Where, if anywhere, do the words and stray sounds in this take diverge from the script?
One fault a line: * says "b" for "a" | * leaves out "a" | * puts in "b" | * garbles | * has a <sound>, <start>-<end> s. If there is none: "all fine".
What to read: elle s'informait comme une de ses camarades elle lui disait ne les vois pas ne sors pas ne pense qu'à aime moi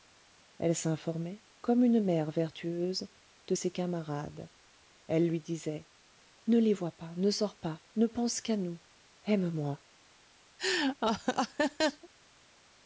* puts in "mère vertueuse"
* puts in "nous"
* has a laugh, 10.6-12.1 s